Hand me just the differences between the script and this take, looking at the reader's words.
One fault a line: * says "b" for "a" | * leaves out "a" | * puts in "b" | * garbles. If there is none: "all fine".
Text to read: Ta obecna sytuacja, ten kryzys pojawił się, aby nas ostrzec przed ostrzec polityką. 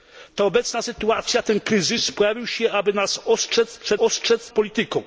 all fine